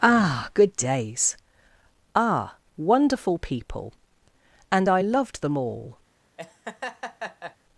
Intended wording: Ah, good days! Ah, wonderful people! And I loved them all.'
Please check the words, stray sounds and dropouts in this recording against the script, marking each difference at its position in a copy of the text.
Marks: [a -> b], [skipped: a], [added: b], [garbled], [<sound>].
Ah, good days! Ah, wonderful people! And I loved them all.' [laugh]